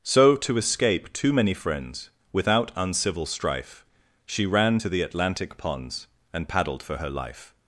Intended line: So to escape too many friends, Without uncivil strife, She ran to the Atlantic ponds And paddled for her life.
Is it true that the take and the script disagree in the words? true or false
false